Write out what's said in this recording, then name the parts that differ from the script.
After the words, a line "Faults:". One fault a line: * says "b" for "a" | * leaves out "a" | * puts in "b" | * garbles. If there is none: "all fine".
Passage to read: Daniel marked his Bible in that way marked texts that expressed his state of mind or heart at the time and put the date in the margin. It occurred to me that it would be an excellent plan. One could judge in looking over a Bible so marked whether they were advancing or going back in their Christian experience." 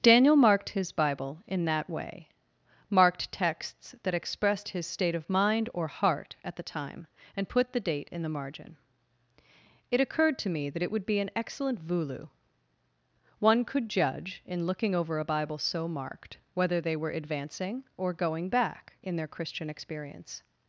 Daniel marked his Bible in that way marked texts that expressed his state of mind or heart at the time and put the date in the margin. It occurred to me that it would be an excellent voulu. One could judge in looking over a Bible so marked whether they were advancing or going back in their Christian experience."
Faults:
* says "voulu" for "plan"